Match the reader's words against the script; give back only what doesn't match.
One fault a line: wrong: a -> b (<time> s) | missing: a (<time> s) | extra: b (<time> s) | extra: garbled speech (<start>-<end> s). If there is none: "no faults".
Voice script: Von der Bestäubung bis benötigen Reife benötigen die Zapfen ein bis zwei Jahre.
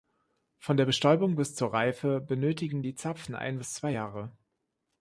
wrong: benötigen -> zur (1.6 s)